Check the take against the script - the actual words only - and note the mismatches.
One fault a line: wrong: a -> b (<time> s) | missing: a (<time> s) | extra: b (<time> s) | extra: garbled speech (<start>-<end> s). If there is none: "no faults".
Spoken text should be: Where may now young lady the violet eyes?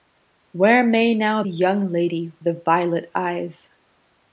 no faults